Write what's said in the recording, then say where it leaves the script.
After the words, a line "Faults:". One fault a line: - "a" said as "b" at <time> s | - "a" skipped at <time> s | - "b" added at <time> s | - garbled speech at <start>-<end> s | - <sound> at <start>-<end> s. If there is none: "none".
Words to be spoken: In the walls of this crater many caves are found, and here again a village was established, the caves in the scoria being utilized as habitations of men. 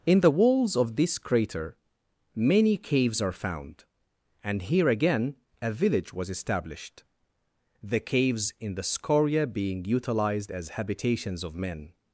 In the walls of this crater many caves are found, and here again a village was established, the caves in the scoria being utilized as habitations of men.
Faults:
none